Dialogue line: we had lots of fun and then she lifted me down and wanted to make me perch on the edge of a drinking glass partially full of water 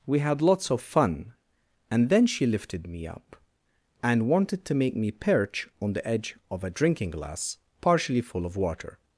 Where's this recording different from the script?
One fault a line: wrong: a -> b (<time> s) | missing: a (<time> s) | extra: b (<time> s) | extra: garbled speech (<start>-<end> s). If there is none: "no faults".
wrong: down -> up (3.1 s)